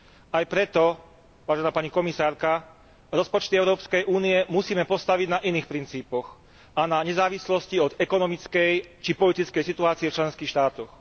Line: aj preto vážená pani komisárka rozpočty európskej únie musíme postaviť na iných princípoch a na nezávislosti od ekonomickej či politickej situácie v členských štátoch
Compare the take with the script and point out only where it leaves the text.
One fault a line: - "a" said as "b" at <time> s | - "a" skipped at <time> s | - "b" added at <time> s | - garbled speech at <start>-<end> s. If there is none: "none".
none